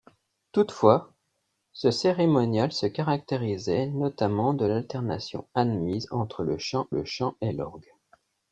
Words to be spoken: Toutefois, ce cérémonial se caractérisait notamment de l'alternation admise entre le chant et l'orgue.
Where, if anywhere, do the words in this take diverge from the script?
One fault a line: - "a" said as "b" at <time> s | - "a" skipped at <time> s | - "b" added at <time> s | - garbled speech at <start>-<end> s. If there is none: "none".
- "le chant" added at 6.9 s